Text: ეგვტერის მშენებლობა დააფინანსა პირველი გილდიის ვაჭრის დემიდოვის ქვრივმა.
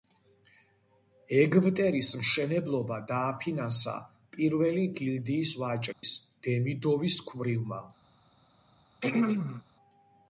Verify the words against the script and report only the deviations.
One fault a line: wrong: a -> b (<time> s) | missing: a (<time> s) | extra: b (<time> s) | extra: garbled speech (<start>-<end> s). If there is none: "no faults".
no faults